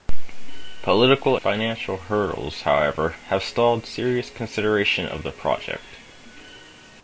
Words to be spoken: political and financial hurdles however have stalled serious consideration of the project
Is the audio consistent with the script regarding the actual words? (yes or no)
no